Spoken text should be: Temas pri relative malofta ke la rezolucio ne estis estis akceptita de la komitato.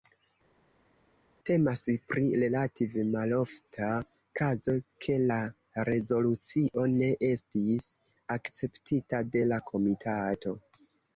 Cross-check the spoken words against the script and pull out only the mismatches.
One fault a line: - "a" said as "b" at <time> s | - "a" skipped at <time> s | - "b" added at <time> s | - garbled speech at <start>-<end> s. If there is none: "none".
- "kazo" added at 4.4 s
- "estis" skipped at 7.9 s